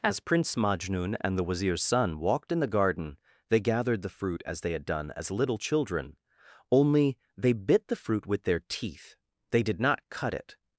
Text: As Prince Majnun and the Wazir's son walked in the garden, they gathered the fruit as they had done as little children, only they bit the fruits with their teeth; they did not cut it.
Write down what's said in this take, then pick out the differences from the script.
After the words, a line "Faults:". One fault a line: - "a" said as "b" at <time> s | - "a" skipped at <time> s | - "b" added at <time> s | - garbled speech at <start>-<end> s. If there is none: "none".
As Prince Majnun and the Wazir's son walked in the garden, they gathered the fruit as they had done as little children, only they bit the fruit with their teeth; they did not cut it.
Faults:
- "fruits" said as "fruit" at 8.0 s